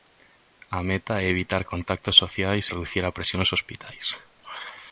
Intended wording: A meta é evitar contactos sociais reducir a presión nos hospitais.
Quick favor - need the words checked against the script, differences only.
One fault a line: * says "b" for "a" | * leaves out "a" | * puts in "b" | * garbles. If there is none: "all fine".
all fine